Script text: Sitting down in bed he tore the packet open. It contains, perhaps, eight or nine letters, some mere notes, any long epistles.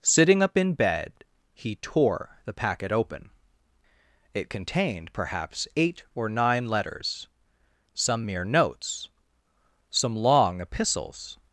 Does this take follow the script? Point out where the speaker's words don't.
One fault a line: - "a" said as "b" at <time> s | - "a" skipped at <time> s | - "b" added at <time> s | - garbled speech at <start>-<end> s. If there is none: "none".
- "down" said as "up" at 0.4 s
- "contains" said as "contained" at 4.5 s
- "any" said as "some" at 9.9 s